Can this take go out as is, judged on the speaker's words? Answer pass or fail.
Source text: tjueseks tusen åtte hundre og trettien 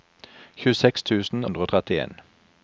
fail